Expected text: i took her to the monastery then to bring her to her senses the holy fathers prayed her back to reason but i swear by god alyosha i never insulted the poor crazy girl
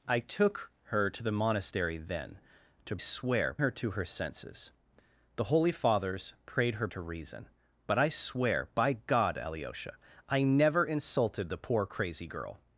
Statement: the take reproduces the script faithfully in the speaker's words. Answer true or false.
false